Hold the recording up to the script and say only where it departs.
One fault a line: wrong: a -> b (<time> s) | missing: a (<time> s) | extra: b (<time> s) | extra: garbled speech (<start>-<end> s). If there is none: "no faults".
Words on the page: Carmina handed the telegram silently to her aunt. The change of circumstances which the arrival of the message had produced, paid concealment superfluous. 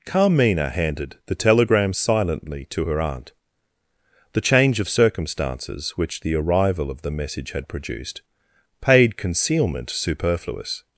no faults